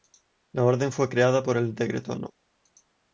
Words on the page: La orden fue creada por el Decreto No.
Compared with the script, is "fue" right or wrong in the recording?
right